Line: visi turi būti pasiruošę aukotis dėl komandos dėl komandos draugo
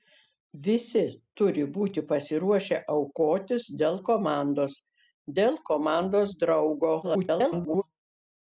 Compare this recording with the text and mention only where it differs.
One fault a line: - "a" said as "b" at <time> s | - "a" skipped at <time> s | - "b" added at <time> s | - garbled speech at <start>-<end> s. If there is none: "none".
- garbled speech at 7.0-7.8 s